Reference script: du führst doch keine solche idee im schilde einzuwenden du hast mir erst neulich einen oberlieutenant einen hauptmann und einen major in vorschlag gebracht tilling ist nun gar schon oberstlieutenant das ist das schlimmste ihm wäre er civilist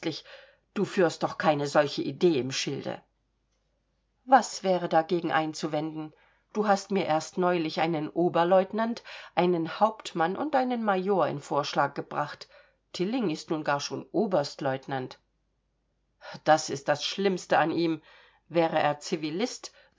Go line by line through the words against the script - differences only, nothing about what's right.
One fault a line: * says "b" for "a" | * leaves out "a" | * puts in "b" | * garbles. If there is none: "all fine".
* puts in "was wäre dagegen"
* puts in "an"